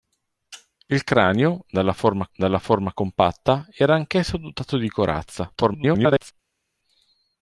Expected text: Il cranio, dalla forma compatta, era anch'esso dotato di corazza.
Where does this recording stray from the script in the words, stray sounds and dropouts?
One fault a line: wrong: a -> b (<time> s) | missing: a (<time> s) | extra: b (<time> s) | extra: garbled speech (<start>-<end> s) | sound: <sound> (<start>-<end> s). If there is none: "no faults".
extra: dalla forma (2.3 s)
extra: garbled speech (5.5-6.3 s)